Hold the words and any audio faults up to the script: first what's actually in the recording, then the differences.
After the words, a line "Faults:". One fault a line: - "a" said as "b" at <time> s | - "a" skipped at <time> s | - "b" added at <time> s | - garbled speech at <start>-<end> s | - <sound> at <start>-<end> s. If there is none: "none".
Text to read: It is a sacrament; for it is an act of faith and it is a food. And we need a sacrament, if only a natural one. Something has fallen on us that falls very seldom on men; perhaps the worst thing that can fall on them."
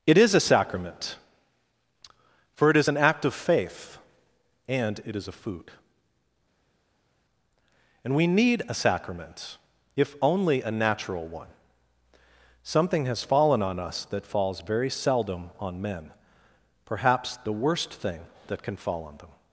It is a sacrament; for it is an act of faith and it is a food. And we need a sacrament, if only a natural one. Something has fallen on us that falls very seldom on men; perhaps the worst thing that can fall on them."
Faults:
none